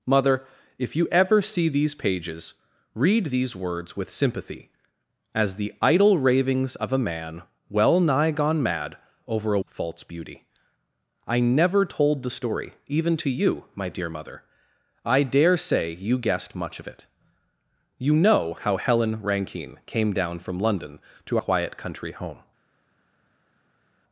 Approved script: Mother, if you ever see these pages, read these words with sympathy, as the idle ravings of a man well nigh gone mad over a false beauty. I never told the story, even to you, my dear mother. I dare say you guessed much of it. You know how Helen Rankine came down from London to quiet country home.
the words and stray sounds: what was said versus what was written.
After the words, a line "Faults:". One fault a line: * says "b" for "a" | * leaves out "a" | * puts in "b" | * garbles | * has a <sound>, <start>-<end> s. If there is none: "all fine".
Mother, if you ever see these pages, read these words with sympathy, as the idle ravings of a man well nigh gone mad over a false beauty. I never told the story, even to you, my dear mother. I dare say you guessed much of it. You know how Helen Rankine came down from London to quiet country home.
Faults:
all fine